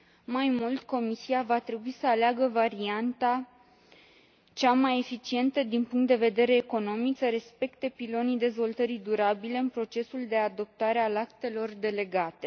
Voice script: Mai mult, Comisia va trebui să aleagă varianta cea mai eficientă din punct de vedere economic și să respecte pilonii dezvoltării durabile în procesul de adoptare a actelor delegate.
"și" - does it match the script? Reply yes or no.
no